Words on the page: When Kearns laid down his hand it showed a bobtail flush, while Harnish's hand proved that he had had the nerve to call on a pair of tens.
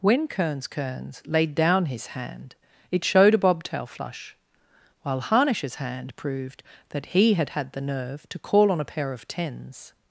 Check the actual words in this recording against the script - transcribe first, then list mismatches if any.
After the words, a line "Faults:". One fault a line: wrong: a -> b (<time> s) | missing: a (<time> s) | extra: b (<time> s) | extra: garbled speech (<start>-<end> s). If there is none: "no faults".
When Kearns Kearns laid down his hand it showed a bobtail flush, while Harnish's hand proved that he had had the nerve to call on a pair of tens.
Faults:
extra: Kearns (0.7 s)